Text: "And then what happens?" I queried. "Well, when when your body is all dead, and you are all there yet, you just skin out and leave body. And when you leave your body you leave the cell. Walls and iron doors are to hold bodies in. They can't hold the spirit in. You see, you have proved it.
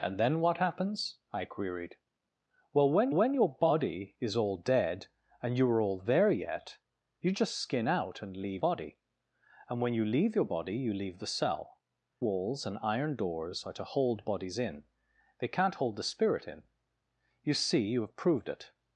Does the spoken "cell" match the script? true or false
true